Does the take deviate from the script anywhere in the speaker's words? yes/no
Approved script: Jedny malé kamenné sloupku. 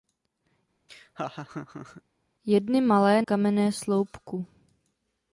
no